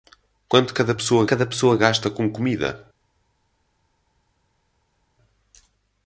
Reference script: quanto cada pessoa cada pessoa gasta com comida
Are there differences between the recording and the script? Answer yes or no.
no